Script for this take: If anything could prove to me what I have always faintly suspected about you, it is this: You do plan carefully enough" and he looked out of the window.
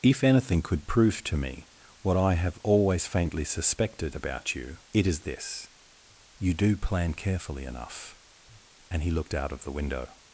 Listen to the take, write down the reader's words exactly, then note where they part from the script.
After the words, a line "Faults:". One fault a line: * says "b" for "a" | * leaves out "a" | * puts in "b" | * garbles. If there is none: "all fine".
If anything could prove to me what I have always faintly suspected about you, it is this: You do plan carefully enough" and he looked out of the window.
Faults:
all fine